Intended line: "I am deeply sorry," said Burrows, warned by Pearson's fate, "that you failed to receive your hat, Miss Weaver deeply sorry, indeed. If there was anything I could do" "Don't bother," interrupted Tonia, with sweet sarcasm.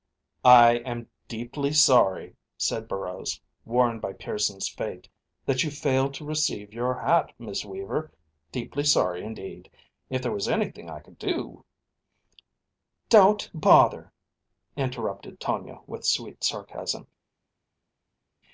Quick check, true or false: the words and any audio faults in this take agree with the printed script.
true